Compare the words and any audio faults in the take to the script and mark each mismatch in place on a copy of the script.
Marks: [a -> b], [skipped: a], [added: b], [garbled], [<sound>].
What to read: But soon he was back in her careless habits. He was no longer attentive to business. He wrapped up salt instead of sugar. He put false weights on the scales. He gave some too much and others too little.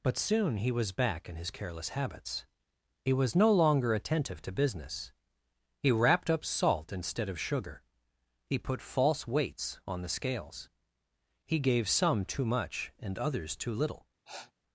But soon he was back in [her -> his] careless habits. He was no longer attentive to business. He wrapped up salt instead of sugar. He put false weights on the scales. He gave some too much and others too little. [sniff]